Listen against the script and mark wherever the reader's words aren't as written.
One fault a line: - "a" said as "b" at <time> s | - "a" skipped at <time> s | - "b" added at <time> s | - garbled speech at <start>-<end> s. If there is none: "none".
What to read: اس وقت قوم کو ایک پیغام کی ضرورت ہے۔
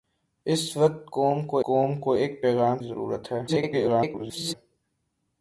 - "قوم کو" added at 1.6 s
- "کی" skipped at 2.8 s
- garbled speech at 3.5-4.5 s